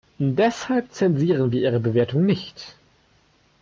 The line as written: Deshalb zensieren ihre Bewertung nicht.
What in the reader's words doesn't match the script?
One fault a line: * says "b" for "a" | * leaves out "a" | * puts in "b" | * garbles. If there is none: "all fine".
* puts in "wir"